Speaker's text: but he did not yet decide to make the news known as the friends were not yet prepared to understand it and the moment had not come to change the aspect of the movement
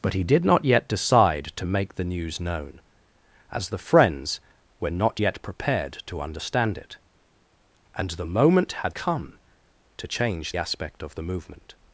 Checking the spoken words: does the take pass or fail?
fail